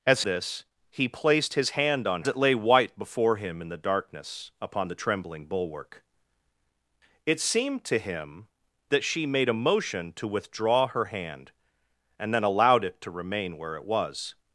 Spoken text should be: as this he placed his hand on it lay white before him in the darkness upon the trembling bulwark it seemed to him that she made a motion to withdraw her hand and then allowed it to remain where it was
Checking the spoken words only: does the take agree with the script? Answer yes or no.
yes